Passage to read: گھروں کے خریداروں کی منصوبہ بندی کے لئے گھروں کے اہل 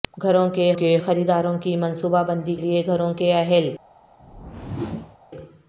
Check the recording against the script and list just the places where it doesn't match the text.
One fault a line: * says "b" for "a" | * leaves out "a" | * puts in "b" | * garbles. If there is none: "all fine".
* puts in "کے"
* leaves out "کے"